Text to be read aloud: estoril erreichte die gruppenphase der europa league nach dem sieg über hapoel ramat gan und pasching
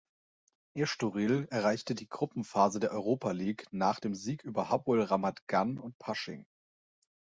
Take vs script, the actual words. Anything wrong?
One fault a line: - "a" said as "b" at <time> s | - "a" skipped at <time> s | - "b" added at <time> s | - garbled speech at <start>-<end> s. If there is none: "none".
none